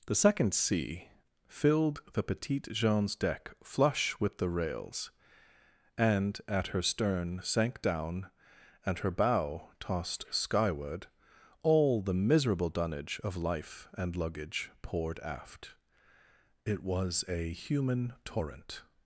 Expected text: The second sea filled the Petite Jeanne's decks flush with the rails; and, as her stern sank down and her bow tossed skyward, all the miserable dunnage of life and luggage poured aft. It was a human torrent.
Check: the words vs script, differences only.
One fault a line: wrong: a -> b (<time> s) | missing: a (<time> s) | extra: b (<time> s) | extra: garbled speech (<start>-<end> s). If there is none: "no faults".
wrong: decks -> deck (3.1 s)
wrong: as -> at (6.5 s)